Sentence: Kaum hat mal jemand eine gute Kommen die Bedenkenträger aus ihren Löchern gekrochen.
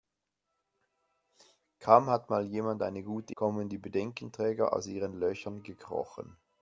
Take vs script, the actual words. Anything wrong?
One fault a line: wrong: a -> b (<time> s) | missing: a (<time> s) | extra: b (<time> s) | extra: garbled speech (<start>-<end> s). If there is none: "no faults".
no faults